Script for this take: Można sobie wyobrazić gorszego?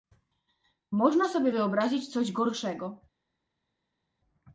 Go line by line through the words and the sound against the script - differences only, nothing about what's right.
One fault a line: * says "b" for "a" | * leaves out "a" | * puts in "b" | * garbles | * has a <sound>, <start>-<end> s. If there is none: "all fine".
* puts in "coś"